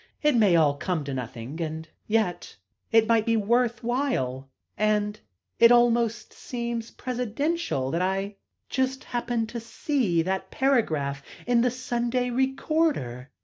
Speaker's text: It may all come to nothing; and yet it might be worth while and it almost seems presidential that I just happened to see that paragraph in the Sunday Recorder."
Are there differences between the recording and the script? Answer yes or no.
no